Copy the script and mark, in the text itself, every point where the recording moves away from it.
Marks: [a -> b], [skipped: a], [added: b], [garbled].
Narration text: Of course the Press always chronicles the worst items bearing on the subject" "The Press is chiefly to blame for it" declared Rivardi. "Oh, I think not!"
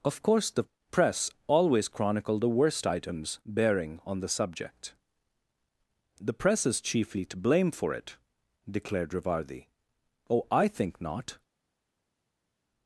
Of course the Press always [chronicles -> chronicle] the worst items bearing on the subject" "The Press is chiefly to blame for it" declared Rivardi. "Oh, I think not!"